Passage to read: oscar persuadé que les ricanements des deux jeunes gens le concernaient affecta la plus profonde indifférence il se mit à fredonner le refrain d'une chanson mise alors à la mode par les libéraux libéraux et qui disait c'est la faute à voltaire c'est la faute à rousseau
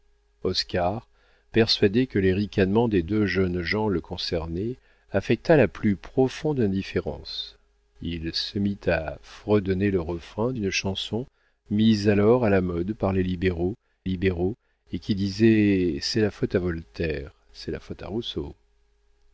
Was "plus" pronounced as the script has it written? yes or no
yes